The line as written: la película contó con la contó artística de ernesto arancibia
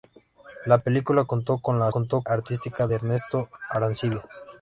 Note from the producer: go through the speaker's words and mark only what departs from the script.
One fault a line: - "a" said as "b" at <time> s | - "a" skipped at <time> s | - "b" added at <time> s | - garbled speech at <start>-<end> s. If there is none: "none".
none